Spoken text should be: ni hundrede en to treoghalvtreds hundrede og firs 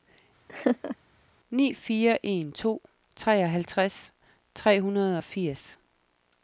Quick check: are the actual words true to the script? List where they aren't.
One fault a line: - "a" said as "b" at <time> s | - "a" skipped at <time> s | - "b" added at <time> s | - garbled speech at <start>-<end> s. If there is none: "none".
- "hundrede" said as "fire" at 1.7 s
- "tre" added at 4.5 s